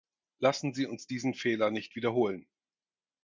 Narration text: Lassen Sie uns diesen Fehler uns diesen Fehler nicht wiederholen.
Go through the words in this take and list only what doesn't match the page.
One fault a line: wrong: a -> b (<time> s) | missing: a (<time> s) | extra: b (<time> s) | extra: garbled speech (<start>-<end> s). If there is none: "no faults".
missing: uns diesen Fehler (1.7 s)